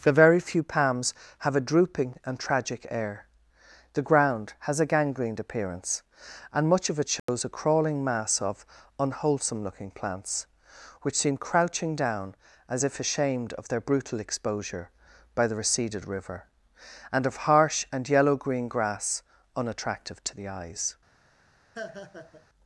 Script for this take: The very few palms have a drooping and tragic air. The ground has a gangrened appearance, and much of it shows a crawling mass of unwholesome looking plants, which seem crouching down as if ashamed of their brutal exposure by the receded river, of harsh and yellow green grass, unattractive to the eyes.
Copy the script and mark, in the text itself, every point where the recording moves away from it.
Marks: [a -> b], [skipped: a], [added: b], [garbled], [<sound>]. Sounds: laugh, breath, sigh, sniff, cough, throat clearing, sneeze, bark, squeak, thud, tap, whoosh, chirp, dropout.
The very few palms have a drooping and tragic air. The ground has a gangrened appearance, and much of it shows [dropout] a crawling mass of unwholesome looking plants, which seem crouching down as if ashamed of their brutal exposure by the receded river, [added: and] of harsh and yellow green grass, unattractive to the eyes. [laugh]